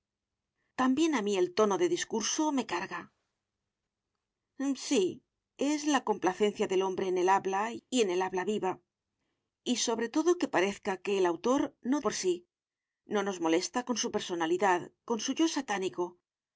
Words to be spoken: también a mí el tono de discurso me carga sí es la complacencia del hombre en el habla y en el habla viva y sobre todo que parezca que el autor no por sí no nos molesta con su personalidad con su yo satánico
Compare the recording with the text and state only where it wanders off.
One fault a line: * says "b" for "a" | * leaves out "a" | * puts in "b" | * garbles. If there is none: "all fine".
all fine